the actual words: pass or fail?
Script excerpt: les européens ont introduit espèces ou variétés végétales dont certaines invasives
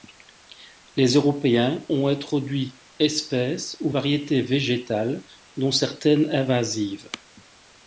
pass